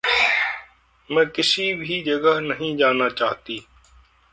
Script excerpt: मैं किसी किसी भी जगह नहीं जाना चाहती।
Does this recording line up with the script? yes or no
no